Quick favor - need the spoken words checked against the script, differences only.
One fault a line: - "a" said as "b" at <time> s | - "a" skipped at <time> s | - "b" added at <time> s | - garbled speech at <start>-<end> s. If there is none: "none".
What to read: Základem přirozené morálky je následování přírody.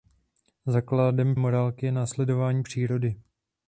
- "přirozené" skipped at 1.4 s